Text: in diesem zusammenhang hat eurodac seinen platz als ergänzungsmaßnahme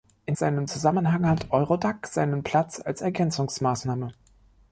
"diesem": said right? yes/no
no